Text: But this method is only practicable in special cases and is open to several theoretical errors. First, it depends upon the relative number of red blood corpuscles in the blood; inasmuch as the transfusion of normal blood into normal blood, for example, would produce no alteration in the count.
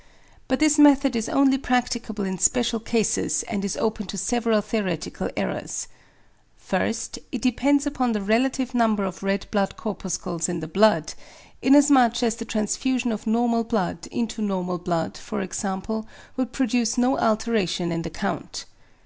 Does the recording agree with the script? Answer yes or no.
yes